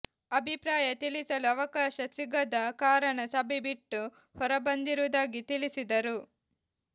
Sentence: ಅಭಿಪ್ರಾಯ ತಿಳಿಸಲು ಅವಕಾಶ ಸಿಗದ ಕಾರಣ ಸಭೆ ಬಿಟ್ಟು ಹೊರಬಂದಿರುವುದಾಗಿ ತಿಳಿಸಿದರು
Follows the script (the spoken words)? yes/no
yes